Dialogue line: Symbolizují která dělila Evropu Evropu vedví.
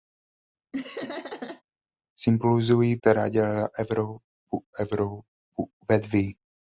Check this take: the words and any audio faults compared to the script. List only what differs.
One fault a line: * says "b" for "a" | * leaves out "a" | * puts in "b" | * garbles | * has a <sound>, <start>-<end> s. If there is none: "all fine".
* has a laugh, 0.7-1.6 s